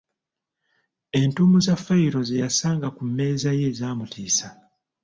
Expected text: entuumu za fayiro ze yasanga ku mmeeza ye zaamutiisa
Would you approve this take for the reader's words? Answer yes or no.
yes